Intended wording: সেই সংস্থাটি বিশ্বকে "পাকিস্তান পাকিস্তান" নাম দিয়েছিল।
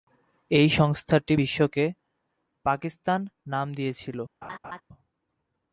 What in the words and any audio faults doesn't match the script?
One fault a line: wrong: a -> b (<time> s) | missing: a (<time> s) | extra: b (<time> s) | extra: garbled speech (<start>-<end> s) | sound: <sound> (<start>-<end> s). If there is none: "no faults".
wrong: সেই -> এই (0.5 s)
missing: পাকিস্তান (3.2 s)
sound: laugh (4.4-4.8 s)